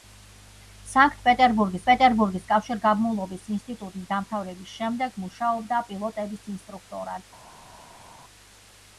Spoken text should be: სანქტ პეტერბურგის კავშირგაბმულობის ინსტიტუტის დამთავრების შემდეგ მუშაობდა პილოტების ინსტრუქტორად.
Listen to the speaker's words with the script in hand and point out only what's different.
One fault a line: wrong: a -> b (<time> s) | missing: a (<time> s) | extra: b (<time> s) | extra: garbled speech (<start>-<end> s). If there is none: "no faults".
extra: პეტერბურგის (1.9 s)